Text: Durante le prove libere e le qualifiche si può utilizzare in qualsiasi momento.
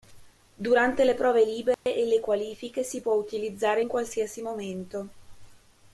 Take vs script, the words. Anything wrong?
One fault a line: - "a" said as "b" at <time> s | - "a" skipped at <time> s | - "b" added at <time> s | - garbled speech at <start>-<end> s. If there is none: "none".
none